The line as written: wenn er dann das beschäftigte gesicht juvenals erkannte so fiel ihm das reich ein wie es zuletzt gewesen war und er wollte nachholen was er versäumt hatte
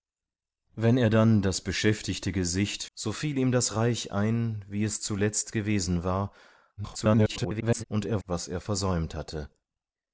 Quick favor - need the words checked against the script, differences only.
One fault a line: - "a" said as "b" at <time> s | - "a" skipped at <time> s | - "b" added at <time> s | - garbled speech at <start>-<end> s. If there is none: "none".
- "juvenals erkannte" skipped at 2.9 s
- garbled speech at 6.8-7.8 s
- "wollte nachholen" skipped at 8.2 s